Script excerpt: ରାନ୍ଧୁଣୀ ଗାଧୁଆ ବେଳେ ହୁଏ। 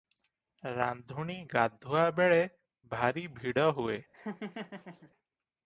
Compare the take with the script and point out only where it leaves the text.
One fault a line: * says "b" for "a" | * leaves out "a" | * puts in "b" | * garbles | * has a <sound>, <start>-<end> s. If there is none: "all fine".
* puts in "ଭାରି ଭିଡ଼"
* has a laugh, 4.1-5.1 s